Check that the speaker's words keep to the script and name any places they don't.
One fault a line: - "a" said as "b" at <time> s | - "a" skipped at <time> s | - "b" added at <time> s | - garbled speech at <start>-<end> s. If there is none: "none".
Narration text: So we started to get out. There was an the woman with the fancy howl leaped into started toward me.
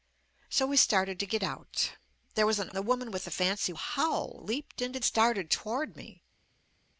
none